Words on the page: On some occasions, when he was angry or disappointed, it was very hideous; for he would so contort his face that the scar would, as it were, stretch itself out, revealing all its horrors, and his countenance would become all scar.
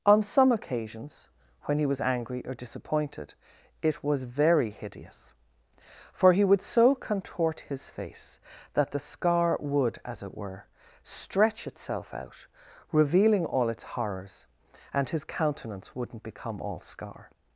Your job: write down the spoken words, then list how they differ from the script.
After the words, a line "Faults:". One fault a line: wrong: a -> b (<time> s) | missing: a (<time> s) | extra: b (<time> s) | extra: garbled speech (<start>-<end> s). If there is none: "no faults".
On some occasions, when he was angry or disappointed, it was very hideous; for he would so contort his face that the scar would, as it were, stretch itself out, revealing all its horrors, and his countenance wouldn't become all scar.
Faults:
wrong: would -> wouldn't (15.9 s)